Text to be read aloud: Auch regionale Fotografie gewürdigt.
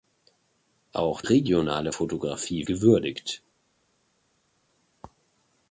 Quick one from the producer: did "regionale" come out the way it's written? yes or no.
yes